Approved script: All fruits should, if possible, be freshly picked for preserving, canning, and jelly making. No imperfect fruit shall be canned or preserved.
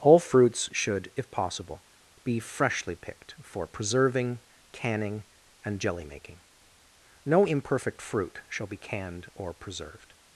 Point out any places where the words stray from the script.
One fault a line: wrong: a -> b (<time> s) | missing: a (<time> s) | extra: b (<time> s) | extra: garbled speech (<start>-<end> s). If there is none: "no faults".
no faults